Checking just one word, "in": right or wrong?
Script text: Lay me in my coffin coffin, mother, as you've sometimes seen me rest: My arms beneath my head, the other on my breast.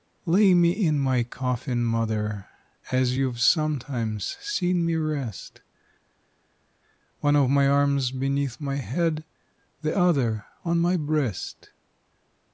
right